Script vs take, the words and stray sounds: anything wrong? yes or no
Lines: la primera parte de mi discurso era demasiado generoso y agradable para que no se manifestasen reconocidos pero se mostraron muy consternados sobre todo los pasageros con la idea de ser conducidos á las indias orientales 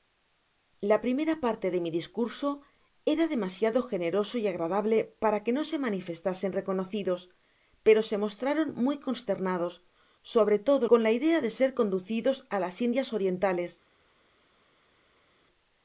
yes